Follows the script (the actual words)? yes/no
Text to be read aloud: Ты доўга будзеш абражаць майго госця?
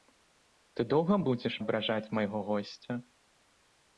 yes